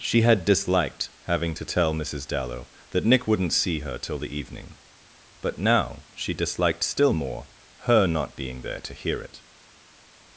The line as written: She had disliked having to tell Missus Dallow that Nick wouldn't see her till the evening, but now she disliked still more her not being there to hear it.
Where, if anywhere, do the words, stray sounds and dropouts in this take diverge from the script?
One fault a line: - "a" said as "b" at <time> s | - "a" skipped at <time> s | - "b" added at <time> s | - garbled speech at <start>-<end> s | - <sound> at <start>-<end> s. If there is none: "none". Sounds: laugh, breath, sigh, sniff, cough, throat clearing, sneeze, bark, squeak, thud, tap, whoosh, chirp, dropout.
none